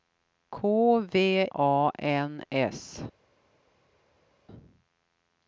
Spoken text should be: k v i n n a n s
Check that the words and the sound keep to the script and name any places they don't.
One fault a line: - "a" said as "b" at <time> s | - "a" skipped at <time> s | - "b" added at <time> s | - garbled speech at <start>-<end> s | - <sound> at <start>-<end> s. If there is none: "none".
- "i n n" skipped at 1.4 s